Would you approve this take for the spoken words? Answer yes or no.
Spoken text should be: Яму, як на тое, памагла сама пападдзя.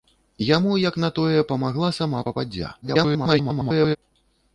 no